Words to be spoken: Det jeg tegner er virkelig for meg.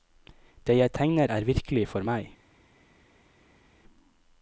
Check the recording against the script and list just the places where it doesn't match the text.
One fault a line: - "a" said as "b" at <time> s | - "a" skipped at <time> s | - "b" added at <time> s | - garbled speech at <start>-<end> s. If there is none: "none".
none